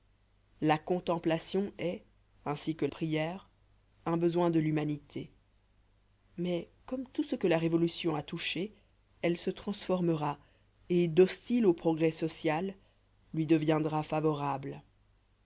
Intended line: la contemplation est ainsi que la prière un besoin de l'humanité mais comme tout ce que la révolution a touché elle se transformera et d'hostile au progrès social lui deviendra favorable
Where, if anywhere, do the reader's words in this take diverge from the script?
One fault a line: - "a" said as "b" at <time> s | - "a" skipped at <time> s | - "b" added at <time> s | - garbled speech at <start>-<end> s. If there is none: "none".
- "la" skipped at 2.9 s